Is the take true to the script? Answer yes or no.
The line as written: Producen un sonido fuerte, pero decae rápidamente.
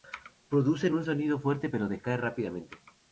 yes